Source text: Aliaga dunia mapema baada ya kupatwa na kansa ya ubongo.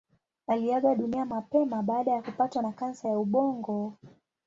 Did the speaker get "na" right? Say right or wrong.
right